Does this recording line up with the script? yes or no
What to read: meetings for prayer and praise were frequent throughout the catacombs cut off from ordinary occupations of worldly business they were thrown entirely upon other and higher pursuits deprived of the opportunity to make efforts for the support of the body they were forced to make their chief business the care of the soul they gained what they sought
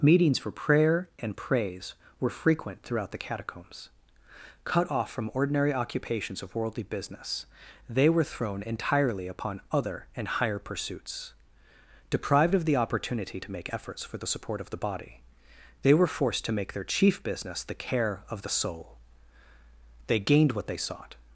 yes